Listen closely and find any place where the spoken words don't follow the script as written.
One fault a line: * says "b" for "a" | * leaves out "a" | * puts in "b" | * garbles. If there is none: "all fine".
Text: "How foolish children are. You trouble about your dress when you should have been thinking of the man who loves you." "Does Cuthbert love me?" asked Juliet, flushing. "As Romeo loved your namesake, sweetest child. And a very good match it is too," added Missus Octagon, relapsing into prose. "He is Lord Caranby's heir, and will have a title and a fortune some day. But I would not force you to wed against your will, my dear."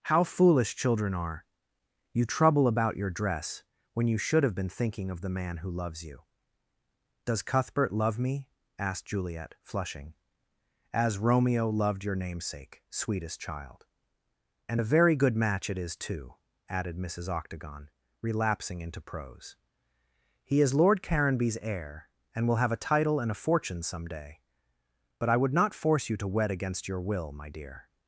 all fine